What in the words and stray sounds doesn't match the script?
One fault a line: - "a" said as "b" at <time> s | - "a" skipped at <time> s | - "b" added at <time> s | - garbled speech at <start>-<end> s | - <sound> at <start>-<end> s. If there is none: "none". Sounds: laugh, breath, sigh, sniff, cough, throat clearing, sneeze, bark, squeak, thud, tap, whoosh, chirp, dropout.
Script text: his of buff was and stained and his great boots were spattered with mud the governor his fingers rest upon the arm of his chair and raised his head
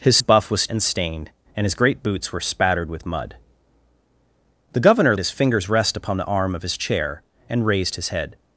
none